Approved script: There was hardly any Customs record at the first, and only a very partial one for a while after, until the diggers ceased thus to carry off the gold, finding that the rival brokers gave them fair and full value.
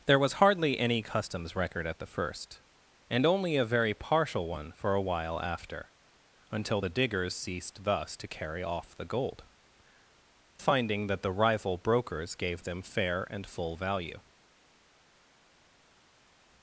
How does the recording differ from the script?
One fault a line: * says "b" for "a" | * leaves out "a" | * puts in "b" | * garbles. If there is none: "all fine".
all fine